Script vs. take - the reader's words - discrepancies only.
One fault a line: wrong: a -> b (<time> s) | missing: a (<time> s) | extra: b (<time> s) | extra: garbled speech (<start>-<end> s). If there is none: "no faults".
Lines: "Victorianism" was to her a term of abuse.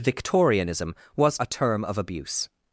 missing: to her (1.4 s)